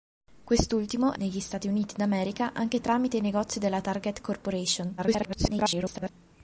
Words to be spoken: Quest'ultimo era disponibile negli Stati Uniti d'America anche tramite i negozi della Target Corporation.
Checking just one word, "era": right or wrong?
wrong